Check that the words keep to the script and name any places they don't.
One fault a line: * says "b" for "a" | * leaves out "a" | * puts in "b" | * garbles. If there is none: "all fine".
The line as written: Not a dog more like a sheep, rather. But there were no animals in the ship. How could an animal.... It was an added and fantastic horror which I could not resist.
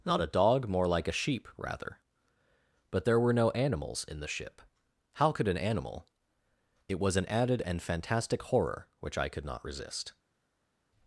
all fine